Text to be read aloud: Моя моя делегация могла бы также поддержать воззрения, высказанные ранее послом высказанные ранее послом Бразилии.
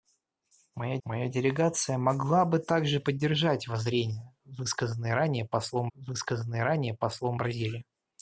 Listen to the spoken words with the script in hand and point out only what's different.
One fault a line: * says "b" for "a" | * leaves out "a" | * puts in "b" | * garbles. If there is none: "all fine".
all fine